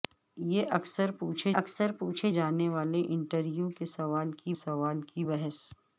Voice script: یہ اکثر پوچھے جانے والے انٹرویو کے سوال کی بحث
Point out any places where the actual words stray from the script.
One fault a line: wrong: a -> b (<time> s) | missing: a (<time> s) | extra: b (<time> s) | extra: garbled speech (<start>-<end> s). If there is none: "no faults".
extra: اکثر پوچھے (1.5 s)
extra: سوال کی (4.6 s)